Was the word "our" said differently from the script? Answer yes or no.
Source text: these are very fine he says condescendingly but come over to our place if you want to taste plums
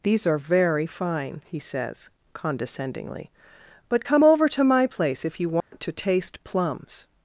yes